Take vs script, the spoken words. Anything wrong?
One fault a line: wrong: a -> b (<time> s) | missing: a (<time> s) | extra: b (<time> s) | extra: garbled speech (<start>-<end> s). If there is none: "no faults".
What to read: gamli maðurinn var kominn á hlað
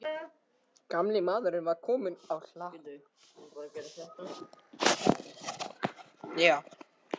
no faults